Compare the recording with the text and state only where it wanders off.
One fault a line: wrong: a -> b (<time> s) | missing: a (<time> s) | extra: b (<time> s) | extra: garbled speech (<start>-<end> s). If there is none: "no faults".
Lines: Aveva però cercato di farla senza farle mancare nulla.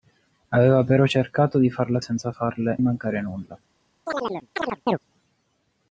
no faults